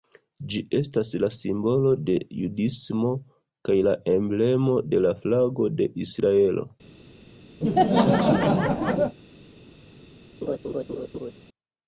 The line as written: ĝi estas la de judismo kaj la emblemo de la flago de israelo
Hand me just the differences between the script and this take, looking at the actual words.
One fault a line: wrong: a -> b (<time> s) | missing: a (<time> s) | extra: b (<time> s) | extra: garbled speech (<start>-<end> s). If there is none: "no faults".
extra: simbolo (1.4 s)